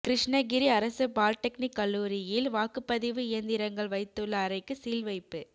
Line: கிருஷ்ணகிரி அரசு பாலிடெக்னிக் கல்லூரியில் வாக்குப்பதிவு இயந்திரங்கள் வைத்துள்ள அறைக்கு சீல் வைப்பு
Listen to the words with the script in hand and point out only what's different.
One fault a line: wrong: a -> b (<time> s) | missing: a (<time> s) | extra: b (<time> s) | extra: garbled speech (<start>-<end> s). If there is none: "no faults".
no faults